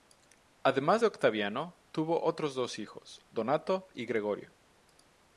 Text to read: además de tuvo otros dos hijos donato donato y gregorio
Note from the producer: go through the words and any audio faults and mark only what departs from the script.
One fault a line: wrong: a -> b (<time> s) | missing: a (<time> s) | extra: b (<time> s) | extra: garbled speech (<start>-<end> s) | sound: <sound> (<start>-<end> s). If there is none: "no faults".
extra: octaviano (1.1 s)
missing: donato (3.9 s)